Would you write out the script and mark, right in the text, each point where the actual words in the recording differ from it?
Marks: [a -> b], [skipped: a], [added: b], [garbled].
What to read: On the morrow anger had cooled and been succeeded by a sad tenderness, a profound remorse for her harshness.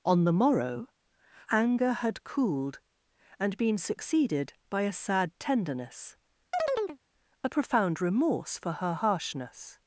On the morrow anger had cooled and been succeeded by a sad tenderness, a profound remorse for her harshness.